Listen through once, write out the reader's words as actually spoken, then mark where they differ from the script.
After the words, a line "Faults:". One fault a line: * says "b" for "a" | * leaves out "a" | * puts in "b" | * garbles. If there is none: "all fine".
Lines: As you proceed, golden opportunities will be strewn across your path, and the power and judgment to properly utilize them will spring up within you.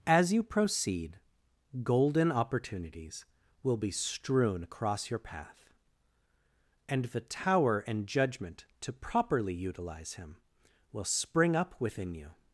As you proceed, golden opportunities will be strewn across your path, and the tower and judgment to properly utilize him will spring up within you.
Faults:
* says "tower" for "power"
* says "him" for "them"